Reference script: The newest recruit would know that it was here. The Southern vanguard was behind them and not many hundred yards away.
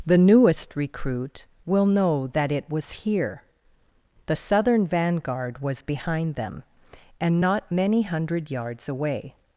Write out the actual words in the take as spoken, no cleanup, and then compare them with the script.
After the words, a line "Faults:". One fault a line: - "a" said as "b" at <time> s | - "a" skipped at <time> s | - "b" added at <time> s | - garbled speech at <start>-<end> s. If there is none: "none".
The newest recruit will know that it was here. The Southern vanguard was behind them and not many hundred yards away.
Faults:
- "would" said as "will" at 1.6 s